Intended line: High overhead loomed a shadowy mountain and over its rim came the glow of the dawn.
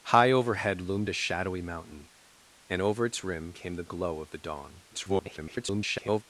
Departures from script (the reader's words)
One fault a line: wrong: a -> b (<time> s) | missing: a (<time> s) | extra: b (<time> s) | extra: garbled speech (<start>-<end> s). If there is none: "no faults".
extra: garbled speech (4.9-6.2 s)